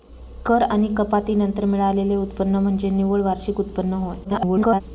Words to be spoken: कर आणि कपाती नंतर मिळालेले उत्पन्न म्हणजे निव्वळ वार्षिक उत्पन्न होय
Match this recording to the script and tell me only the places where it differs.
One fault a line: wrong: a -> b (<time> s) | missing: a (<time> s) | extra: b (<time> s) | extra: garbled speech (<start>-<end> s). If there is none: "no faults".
extra: garbled speech (4.2-4.8 s)